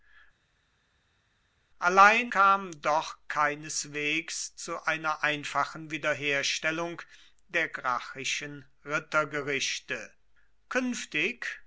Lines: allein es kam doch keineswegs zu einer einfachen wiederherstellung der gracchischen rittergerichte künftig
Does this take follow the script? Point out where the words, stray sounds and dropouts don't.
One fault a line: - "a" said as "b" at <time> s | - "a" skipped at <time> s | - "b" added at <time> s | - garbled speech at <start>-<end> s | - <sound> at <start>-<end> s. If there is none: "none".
- "es" skipped at 2.3 s